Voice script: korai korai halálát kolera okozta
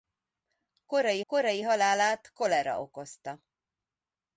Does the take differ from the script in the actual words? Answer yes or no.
no